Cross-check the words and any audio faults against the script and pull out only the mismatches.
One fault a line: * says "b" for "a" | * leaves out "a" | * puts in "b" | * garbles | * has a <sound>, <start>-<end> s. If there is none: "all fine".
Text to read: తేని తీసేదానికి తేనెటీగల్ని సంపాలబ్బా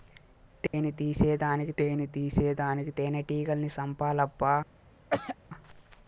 * has a dropout, 0.7-0.7 s
* puts in "తేని తీసేదానికి"
* has a throat clearing, 5.1-5.4 s